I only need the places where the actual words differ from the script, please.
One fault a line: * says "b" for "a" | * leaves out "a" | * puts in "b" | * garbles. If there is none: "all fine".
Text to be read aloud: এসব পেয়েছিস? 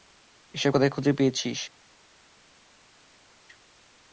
* puts in "কোথায় খুঁজে"